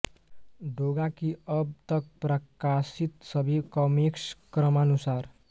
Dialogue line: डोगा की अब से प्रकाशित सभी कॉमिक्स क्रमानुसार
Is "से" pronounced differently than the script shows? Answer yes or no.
yes